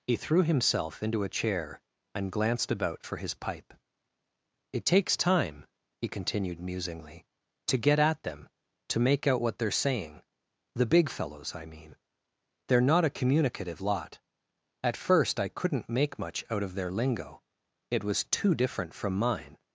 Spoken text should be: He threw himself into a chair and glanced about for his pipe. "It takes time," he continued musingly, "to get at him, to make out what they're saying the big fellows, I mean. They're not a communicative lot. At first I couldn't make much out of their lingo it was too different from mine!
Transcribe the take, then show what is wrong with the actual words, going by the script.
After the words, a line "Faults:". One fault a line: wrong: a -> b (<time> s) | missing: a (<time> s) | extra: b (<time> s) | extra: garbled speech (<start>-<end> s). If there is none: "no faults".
He threw himself into a chair and glanced about for his pipe. "It takes time," he continued musingly, "to get at them, to make out what they're saying the big fellows, I mean. They're not a communicative lot. At first I couldn't make much out of their lingo it was too different from mine!
Faults:
wrong: him -> them (8.2 s)